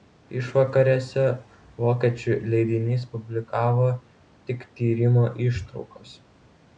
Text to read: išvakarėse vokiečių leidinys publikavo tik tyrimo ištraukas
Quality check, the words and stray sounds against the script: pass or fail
pass